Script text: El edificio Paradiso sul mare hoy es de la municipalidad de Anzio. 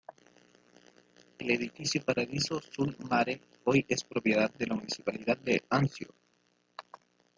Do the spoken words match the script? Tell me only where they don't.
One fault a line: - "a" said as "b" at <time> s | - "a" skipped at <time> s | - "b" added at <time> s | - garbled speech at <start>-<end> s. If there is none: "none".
- "propiedad" added at 4.0 s